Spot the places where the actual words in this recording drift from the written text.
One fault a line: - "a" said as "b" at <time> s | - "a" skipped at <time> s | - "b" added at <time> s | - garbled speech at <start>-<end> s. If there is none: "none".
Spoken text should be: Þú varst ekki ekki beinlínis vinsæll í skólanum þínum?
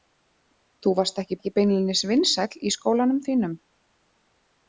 none